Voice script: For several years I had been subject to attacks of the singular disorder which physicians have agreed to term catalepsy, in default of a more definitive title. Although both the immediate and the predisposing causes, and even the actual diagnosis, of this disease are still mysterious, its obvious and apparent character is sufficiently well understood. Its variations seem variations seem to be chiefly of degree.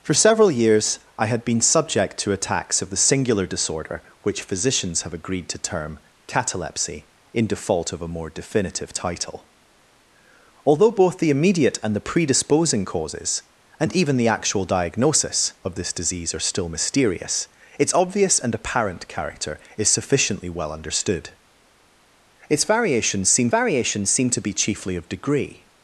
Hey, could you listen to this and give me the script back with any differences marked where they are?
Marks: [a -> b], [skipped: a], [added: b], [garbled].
For several years I had been subject to attacks of the singular disorder which physicians have agreed to term catalepsy, in default of a more definitive title. Although both the immediate and the predisposing causes, and even the actual diagnosis, of this disease are still mysterious, its obvious and apparent character is sufficiently well understood. Its variations seem variations seem to be chiefly of degree.